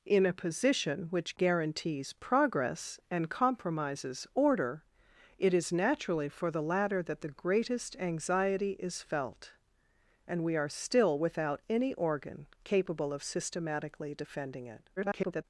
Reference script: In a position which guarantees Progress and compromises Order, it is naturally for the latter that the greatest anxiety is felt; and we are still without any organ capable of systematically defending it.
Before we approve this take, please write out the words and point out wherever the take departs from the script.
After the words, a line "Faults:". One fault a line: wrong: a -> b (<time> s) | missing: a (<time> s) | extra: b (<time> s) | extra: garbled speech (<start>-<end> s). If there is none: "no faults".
In a position which guarantees Progress and compromises Order, it is naturally for the latter that the greatest anxiety is felt; and we are still without any organ capable of systematically defending it. [garbled]
Faults:
extra: garbled speech (15.0-15.4 s)